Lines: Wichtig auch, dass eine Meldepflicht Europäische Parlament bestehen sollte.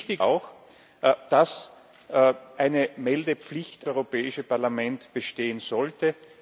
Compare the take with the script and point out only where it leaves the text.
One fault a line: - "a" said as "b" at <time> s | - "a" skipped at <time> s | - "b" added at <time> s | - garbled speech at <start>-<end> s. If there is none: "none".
none